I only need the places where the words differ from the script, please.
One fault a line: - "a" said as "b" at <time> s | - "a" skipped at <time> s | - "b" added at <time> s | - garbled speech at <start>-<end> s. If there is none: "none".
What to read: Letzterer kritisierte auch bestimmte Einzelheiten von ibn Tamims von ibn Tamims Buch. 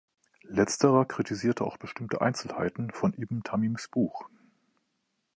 - "von ibn Tamims" skipped at 3.9 s